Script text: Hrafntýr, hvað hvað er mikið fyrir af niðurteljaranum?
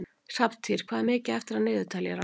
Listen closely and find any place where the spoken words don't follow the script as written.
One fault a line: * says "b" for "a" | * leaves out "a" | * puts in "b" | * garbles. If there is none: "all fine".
* leaves out "hvað"
* says "eftir" for "fyrir"